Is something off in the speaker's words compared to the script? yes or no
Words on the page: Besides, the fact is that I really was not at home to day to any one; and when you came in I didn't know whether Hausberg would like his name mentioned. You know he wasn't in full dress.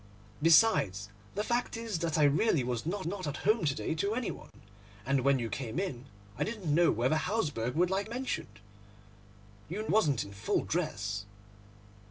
yes